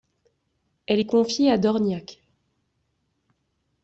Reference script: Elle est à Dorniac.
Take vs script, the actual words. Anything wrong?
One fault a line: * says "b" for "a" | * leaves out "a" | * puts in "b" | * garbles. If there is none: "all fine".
* puts in "confiée"